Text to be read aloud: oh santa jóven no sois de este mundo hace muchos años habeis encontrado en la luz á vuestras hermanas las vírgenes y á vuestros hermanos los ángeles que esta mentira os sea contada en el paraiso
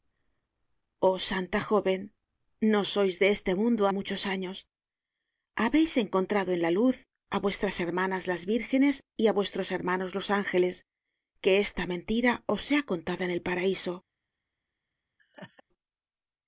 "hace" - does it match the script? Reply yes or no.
no